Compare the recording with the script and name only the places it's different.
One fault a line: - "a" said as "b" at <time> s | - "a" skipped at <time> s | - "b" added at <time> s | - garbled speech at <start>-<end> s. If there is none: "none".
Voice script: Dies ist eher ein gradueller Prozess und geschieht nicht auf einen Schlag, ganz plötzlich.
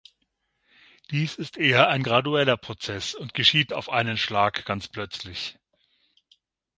- "nicht" skipped at 3.7 s